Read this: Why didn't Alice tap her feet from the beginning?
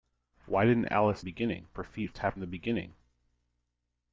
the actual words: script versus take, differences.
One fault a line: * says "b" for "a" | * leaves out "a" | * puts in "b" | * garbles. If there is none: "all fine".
* says "beginning" for "tap"
* says "tap" for "from"